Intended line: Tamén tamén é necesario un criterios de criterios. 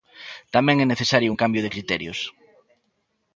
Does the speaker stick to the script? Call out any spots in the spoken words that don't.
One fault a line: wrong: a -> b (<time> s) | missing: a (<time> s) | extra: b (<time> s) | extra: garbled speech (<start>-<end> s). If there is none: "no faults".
missing: tamén (0.8 s)
wrong: criterios -> cambio (1.4 s)